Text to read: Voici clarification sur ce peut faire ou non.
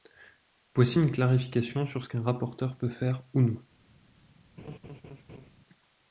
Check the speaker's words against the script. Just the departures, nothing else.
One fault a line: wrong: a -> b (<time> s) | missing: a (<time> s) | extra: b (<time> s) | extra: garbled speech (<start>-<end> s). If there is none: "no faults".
extra: une (1.0 s)
extra: qu'un rapporteur (2.1 s)